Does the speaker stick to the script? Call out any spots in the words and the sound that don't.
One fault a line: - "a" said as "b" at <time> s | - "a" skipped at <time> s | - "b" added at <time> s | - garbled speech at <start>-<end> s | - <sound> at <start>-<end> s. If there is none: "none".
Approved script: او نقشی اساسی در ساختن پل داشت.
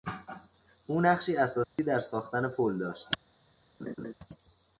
- dropout at 1.6-1.8 s
- laugh at 3.8-4.1 s